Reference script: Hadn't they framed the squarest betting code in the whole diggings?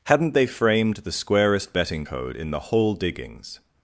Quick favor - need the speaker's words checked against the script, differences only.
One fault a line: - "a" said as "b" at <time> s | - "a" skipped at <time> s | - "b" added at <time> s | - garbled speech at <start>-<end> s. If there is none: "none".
none